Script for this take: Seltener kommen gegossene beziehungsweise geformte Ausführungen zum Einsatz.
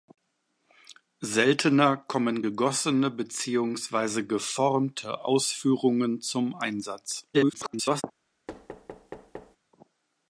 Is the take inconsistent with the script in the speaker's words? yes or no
yes